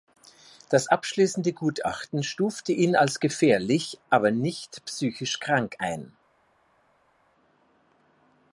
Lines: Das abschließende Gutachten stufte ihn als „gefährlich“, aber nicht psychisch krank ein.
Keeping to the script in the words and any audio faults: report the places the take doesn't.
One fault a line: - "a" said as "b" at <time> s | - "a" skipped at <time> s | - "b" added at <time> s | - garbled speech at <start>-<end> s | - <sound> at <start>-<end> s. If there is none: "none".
none